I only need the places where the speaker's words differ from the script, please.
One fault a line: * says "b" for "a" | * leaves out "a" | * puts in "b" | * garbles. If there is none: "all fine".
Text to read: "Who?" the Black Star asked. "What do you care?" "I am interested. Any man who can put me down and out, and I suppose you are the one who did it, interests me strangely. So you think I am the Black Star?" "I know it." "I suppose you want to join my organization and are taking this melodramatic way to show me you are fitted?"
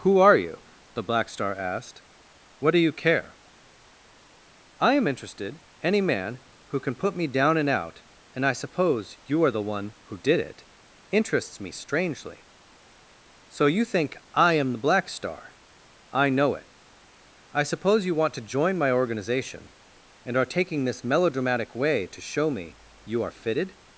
* puts in "are you"